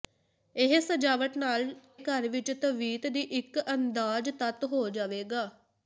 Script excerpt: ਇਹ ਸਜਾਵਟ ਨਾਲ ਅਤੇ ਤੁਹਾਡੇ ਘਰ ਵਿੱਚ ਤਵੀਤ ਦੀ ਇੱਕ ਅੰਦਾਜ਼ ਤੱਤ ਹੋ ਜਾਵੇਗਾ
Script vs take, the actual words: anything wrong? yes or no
yes